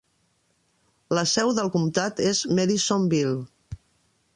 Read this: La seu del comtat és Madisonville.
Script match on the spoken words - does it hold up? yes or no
yes